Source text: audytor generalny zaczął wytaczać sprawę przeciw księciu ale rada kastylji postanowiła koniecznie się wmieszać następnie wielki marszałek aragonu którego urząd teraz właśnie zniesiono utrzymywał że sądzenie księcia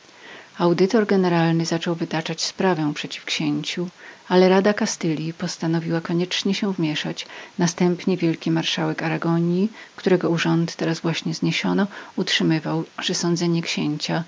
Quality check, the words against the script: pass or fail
pass